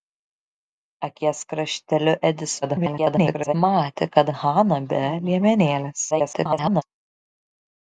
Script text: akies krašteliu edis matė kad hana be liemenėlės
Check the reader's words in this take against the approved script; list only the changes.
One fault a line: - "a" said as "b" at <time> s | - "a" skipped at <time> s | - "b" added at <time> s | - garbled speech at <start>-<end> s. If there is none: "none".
- garbled speech at 2.6-3.5 s
- garbled speech at 6.1-6.8 s